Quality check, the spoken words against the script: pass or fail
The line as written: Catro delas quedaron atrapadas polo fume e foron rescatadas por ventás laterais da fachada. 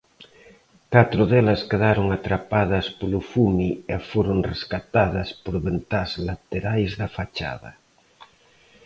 pass